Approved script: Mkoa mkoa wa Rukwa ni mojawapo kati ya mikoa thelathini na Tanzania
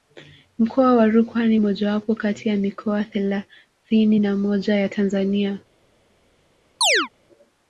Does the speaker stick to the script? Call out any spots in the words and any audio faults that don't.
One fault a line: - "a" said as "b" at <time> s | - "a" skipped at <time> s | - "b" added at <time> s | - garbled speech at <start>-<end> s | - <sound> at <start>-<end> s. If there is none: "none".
- "mkoa" skipped at 0.9 s
- "moja ya" added at 4.4 s
- chirp at 6.8-7.1 s